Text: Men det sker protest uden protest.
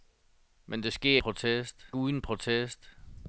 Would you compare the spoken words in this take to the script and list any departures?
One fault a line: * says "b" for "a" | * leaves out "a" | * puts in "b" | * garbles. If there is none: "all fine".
all fine